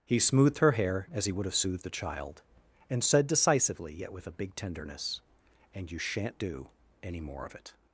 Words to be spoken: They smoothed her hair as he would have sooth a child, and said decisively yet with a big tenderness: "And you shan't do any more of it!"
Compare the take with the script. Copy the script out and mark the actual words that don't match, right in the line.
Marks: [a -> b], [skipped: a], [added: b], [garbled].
[They -> He] smoothed her hair as he would have [sooth -> soothed] a child, and said decisively yet with a big tenderness: "And you shan't do any more of it!"